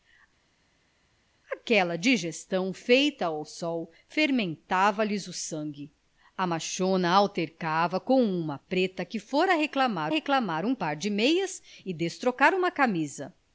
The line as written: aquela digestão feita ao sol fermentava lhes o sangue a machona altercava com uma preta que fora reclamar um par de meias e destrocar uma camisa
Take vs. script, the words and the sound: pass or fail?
fail